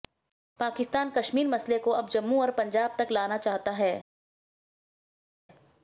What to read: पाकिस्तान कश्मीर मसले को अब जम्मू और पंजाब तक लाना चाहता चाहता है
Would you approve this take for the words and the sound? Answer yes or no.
no